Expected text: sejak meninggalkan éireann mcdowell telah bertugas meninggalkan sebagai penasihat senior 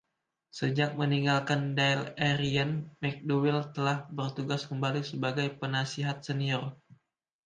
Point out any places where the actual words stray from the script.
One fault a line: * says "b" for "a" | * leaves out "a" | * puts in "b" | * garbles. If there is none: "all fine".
* puts in "dáil"
* says "kembali" for "meninggalkan"